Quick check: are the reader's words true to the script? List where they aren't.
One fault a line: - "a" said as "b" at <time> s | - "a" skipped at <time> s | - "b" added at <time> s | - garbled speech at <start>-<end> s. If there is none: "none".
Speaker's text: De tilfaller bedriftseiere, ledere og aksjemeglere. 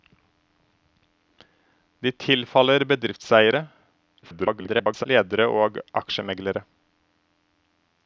- garbled speech at 4.2-5.1 s